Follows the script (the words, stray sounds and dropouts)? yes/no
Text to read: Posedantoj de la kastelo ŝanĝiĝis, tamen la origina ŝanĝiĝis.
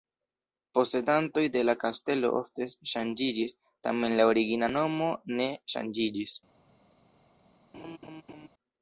no